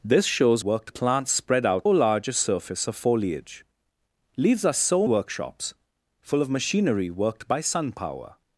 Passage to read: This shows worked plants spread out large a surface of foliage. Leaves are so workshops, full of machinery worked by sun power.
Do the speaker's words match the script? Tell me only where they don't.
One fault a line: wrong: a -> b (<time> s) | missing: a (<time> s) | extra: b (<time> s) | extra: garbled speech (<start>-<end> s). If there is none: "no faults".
no faults